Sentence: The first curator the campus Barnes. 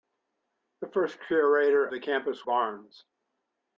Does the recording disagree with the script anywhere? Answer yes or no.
no